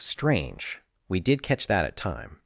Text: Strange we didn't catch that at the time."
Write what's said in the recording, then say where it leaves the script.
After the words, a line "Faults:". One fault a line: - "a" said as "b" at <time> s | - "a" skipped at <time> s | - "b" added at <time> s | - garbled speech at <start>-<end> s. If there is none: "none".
Strange we did catch that at time."
Faults:
- "didn't" said as "did" at 1.2 s
- "the" skipped at 2.0 s